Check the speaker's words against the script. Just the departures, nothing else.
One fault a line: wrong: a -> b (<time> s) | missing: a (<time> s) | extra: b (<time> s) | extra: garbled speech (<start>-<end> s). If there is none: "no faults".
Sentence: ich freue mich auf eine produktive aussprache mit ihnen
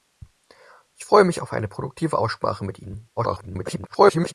extra: garbled speech (3.2-4.3 s)